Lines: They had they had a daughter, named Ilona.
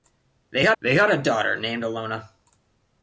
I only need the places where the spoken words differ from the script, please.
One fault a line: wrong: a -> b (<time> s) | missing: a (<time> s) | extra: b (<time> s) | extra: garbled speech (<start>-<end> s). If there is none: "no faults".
no faults